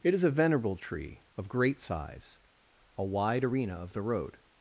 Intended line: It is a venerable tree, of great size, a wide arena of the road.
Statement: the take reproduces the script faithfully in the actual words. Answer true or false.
true